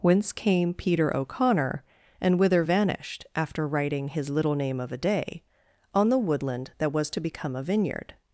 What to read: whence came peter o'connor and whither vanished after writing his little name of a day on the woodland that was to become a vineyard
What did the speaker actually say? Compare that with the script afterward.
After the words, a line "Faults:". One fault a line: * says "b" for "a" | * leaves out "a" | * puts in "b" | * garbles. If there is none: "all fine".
whence came peter o'connor and whither vanished after writing his little name of a day on the woodland that was to become a vineyard
Faults:
all fine